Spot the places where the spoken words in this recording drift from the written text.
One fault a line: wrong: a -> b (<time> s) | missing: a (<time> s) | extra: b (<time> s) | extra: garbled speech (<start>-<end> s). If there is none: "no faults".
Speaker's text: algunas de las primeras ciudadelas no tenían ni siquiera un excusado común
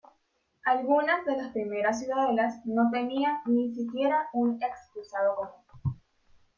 no faults